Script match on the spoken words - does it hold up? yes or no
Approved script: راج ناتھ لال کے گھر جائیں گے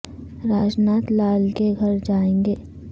yes